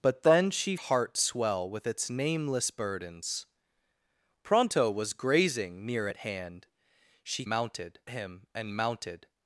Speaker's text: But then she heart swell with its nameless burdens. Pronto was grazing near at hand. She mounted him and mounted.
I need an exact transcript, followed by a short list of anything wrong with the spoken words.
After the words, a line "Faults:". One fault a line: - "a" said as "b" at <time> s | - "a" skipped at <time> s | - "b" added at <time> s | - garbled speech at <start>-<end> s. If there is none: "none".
But then she heart swell with its nameless burdens. Pronto was grazing near at hand. She mounted him and mounted.
Faults:
none